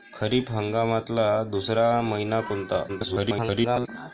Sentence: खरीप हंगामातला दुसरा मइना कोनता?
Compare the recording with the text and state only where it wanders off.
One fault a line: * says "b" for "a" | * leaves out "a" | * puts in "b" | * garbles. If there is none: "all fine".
* garbles